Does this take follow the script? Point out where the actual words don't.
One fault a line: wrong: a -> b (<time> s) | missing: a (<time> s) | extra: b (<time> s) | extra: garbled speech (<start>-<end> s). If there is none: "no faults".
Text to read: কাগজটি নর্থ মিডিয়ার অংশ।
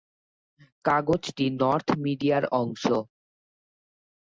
no faults